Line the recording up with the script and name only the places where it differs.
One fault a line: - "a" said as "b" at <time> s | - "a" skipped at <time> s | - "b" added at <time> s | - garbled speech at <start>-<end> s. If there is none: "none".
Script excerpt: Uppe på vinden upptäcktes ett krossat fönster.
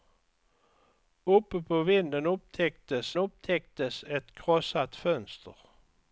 - "upptäcktes" added at 3.2 s